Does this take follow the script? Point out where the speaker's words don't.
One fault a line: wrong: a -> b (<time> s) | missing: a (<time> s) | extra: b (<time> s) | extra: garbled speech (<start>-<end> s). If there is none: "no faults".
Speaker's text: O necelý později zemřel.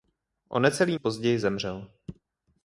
no faults